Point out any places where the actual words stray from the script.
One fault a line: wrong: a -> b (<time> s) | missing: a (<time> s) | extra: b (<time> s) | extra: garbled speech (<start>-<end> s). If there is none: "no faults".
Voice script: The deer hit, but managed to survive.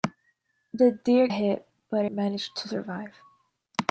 no faults